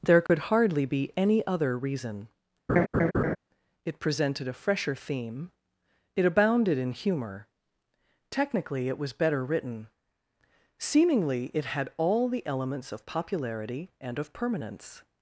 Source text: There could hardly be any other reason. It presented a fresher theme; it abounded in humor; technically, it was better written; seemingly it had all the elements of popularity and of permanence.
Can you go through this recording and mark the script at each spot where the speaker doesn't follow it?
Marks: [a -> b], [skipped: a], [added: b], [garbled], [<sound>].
There could [dropout] hardly be any other reason. [laugh] It presented a fresher theme; it abounded in humor; technically, it was better written; seemingly it had all the elements of popularity and of permanence.